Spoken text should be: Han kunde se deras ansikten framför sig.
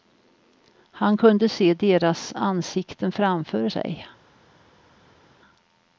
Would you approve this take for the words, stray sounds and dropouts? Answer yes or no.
yes